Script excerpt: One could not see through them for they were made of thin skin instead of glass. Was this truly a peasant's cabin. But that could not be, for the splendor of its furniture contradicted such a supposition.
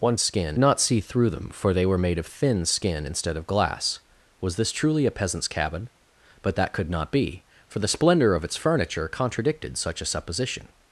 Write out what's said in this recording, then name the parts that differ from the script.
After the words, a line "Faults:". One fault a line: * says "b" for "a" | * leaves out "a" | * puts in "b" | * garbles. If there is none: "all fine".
One skin not see through them for they were made of thin skin instead of glass. Was this truly a peasant's cabin. But that could not be, for the splendor of its furniture contradicted such a supposition.
Faults:
* says "skin" for "could"